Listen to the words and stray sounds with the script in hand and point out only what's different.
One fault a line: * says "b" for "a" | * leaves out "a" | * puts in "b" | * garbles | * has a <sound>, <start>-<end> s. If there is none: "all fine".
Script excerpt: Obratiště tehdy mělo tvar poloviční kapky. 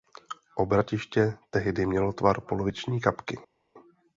all fine